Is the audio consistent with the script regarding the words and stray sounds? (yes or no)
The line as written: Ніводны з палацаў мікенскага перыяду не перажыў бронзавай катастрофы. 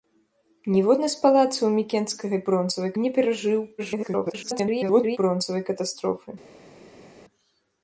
no